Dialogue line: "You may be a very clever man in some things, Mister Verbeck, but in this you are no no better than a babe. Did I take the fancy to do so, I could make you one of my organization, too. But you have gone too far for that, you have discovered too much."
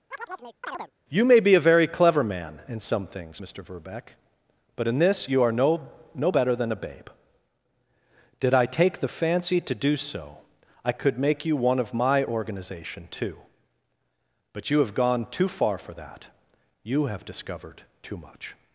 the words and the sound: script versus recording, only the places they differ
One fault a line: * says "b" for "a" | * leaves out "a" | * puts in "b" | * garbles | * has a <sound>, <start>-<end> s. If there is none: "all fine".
* has a chirp, 0.1-0.9 s